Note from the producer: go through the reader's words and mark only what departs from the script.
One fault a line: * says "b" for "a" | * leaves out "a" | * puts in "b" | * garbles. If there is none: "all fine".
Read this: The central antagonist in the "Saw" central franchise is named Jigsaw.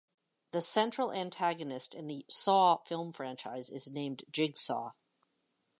* says "film" for "central"